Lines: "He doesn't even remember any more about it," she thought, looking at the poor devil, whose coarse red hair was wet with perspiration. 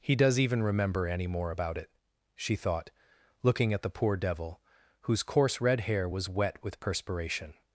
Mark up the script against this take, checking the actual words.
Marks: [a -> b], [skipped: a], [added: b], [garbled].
"He [doesn't -> does] even remember any more about it," she thought, looking at the poor devil, whose coarse red hair was wet with perspiration.